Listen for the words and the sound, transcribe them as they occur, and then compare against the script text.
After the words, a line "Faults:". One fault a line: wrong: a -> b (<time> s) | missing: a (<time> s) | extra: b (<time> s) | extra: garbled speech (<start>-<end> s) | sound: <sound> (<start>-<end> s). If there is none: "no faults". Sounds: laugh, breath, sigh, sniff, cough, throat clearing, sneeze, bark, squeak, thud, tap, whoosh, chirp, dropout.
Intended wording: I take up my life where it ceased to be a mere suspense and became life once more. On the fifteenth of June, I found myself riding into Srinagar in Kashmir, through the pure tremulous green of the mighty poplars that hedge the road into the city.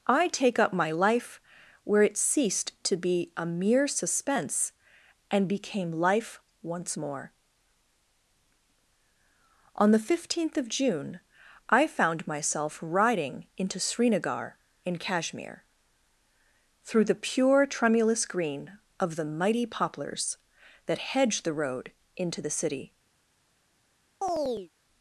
I take up my life where it ceased to be a mere suspense and became life once more. On the fifteenth of June, I found myself riding into Srinagar in Kashmir, through the pure tremulous green of the mighty poplars that hedge the road into the city.
Faults:
sound: chirp (24.2-24.7 s)